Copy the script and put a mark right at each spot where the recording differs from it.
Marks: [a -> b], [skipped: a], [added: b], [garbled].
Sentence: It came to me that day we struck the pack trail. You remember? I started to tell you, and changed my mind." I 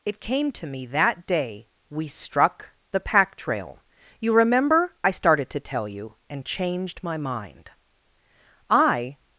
It came to me that day we struck the pack trail. You remember? I started to tell you, and changed my mind." I